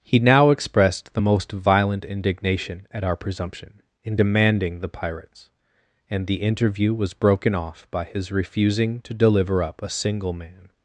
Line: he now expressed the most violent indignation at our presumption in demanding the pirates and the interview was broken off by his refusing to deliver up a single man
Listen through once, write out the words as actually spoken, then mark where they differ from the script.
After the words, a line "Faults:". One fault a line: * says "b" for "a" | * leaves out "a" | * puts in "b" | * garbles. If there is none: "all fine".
he now expressed the most violent indignation at our presumption in demanding the pirates and the interview was broken off by his refusing to deliver up a single man
Faults:
all fine